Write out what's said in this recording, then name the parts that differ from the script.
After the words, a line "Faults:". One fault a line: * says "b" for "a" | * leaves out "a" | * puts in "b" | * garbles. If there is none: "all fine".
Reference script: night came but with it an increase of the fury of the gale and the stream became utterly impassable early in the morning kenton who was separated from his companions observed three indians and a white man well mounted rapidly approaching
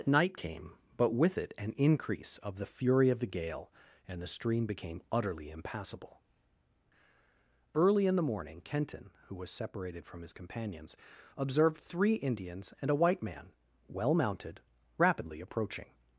night came but with it an increase of the fury of the gale and the stream became utterly impassable early in the morning kenton who was separated from his companions observed three indians and a white man well mounted rapidly approaching
Faults:
all fine